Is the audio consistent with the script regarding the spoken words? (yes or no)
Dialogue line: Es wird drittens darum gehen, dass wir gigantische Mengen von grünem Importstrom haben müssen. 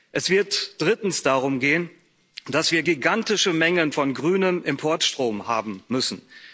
yes